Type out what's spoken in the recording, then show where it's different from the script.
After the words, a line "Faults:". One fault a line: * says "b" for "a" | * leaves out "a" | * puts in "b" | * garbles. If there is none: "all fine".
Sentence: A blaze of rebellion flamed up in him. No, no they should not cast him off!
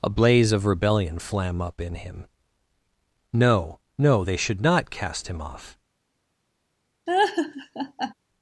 A blaze of rebellion flam up in him. No, no they should not cast him off!
Faults:
* says "flam" for "flamed"